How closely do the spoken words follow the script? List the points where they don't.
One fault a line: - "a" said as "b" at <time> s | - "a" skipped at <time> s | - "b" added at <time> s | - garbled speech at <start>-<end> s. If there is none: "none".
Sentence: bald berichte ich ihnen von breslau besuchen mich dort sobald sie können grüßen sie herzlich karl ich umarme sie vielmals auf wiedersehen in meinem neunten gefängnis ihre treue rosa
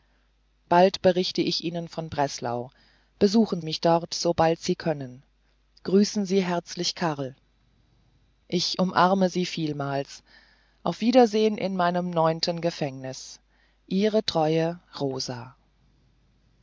none